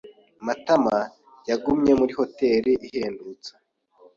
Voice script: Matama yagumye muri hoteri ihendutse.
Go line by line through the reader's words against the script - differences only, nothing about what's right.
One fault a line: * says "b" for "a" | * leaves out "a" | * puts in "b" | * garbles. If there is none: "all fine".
all fine